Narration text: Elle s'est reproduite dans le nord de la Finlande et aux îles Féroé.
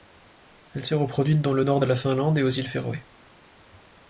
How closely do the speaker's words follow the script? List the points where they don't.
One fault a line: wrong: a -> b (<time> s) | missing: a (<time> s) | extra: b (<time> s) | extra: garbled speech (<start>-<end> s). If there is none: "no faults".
no faults